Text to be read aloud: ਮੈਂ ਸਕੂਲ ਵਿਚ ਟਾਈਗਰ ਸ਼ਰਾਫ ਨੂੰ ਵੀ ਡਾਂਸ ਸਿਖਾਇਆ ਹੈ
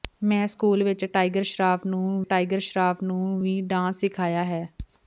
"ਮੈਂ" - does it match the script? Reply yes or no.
yes